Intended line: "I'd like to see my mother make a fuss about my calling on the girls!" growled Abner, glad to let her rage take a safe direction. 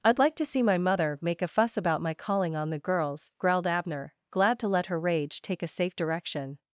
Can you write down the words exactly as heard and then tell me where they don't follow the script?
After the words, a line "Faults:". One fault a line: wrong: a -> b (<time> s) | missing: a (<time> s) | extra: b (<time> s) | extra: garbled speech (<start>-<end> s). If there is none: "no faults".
"I'd like to see my mother make a fuss about my calling on the girls!" growled Abner, glad to let her rage take a safe direction.
Faults:
no faults